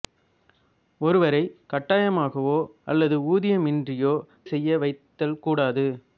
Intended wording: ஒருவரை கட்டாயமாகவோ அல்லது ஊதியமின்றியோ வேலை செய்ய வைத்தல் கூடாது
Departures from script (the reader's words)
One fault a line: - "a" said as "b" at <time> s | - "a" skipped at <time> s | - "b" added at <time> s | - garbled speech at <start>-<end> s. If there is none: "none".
- "வேலை" skipped at 4.2 s